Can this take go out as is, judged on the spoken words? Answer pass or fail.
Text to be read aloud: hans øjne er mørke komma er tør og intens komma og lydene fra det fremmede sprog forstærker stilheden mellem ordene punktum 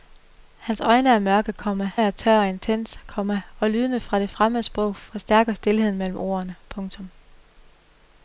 pass